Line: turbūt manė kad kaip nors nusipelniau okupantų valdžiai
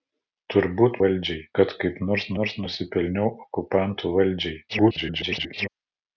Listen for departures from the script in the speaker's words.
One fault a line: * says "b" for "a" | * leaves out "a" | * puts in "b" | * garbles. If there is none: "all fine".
* says "valdžiai" for "manė"
* puts in "nors"
* garbles